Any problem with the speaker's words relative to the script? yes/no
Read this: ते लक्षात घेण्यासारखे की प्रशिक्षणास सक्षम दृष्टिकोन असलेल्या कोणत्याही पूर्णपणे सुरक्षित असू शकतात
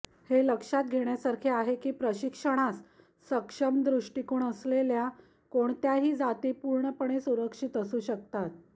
yes